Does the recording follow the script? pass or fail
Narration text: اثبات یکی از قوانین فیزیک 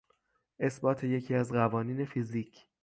pass